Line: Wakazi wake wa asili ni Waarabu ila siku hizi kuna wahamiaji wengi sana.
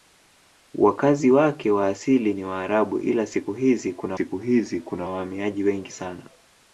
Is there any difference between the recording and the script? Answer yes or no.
yes